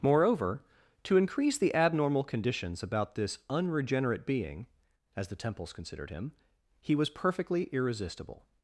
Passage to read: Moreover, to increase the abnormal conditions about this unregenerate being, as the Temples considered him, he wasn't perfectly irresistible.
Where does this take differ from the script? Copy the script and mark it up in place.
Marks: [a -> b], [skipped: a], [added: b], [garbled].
Moreover, to increase the abnormal conditions about this unregenerate being, as the Temples considered him, he [wasn't -> was] perfectly irresistible.